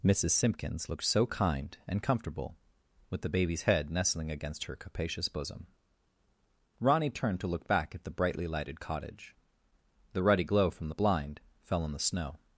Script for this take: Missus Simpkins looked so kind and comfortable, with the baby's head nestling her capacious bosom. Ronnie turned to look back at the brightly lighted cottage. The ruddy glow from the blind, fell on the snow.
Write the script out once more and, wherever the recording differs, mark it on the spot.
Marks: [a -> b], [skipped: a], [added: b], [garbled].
Missus Simpkins looked so kind and comfortable, with the baby's head nestling [added: against] her capacious bosom. Ronnie turned to look back at the brightly lighted cottage. The ruddy glow from the blind, fell on the snow.